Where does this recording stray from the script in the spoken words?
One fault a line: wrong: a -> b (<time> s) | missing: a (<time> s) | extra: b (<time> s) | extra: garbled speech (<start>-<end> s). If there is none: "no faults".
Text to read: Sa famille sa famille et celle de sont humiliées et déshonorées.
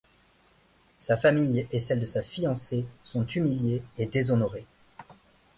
missing: sa famille (1.7 s)
extra: sa fiancée (2.0 s)